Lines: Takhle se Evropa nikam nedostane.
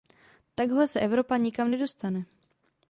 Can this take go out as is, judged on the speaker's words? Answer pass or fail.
pass